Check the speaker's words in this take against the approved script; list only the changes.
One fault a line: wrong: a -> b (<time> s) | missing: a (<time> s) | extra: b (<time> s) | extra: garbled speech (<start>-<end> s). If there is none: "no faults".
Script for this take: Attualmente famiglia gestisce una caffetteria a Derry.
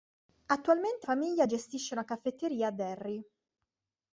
no faults